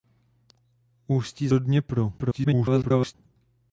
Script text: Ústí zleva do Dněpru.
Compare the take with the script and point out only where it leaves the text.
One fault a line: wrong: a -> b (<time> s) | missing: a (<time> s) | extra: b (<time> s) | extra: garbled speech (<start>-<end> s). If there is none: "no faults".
missing: zleva (1.5 s)
extra: garbled speech (2.2-3.1 s)